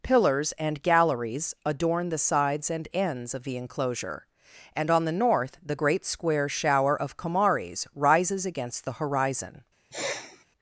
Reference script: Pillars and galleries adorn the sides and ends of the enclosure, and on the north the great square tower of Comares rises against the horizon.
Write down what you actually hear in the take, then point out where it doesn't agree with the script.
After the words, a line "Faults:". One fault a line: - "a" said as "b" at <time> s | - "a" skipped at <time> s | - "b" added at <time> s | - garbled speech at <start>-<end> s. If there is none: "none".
Pillars and galleries adorn the sides and ends of the enclosure, and on the north the great square shower of Comares rises against the horizon.
Faults:
- "tower" said as "shower" at 6.5 s